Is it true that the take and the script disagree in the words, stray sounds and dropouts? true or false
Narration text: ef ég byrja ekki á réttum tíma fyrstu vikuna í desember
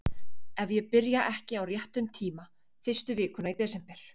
false